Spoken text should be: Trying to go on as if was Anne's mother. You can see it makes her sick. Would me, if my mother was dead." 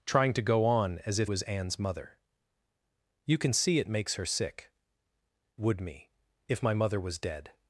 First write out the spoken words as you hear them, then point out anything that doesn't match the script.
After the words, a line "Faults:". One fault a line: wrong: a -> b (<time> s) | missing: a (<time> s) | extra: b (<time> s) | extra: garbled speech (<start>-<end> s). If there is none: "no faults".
Trying to go on as if was Anne's mother. You can see it makes her sick. Would me, if my mother was dead."
Faults:
no faults